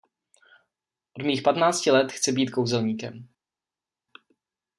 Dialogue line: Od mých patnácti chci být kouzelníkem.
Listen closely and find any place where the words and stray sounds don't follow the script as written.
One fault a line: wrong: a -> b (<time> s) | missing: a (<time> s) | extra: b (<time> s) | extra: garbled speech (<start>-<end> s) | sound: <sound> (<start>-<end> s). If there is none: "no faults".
extra: let (1.9 s)